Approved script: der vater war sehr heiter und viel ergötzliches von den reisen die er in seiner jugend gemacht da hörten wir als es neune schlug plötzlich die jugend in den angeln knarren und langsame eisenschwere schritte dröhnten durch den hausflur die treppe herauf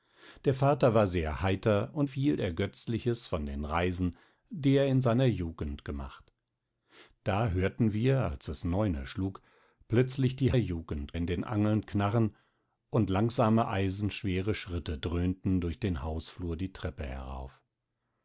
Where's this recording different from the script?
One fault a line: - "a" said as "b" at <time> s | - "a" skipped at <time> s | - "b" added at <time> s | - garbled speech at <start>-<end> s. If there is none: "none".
none